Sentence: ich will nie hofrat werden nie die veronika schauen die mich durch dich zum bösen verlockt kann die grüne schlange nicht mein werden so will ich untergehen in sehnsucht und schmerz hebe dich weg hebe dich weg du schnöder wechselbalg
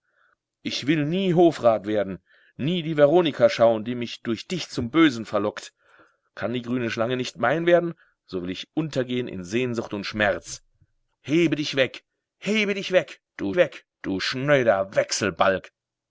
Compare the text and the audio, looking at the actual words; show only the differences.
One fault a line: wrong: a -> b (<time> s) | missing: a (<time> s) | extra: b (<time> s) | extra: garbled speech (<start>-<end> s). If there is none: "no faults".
extra: weg du (13.5 s)